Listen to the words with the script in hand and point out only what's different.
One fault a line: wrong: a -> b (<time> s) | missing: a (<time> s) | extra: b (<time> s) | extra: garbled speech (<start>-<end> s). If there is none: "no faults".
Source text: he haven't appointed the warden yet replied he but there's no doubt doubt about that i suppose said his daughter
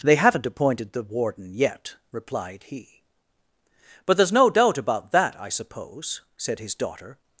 wrong: he -> they (0.0 s)
missing: doubt (4.8 s)